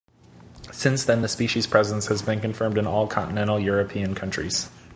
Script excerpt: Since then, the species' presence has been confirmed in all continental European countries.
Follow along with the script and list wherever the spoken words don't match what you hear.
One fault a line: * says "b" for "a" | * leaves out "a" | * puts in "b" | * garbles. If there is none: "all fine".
all fine